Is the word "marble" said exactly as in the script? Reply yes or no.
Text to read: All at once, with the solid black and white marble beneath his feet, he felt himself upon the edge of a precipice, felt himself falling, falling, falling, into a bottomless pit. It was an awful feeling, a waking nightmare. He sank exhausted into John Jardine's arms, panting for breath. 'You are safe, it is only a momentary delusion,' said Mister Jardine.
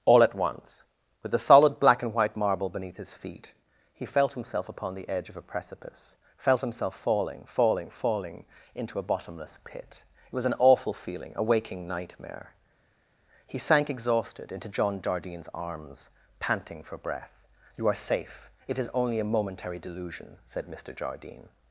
yes